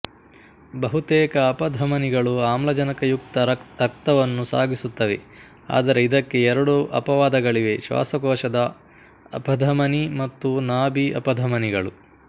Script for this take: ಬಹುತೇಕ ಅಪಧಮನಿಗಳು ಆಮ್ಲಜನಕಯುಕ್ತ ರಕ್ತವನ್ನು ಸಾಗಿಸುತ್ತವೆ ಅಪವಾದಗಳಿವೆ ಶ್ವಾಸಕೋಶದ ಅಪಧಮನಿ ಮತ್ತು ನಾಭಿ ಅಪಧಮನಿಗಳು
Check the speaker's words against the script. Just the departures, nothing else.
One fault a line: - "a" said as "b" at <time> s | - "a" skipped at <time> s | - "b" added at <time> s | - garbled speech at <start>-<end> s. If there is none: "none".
- "ಆದರೆ ಇದಕ್ಕೆ ಎರಡು" added at 5.7 s